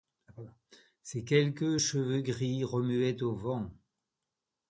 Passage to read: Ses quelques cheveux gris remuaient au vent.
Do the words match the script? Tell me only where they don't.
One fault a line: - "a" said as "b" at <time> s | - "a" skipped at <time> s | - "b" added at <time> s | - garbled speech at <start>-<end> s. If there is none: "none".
none